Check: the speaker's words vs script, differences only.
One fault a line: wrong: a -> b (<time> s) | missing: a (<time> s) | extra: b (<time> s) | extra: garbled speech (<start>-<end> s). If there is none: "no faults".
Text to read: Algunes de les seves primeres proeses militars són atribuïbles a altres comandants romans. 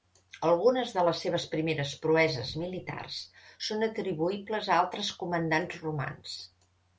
no faults